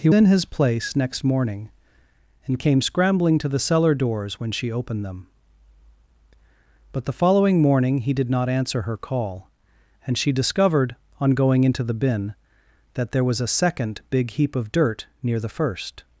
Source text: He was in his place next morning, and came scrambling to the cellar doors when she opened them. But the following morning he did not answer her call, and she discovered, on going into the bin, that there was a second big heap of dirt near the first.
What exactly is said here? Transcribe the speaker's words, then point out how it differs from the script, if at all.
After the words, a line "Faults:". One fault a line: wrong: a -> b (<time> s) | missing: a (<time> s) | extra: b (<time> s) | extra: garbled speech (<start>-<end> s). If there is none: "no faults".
He in his place next morning, and came scrambling to the cellar doors when she opened them. But the following morning he did not answer her call, and she discovered, on going into the bin, that there was a second big heap of dirt near the first.
Faults:
missing: was (0.1 s)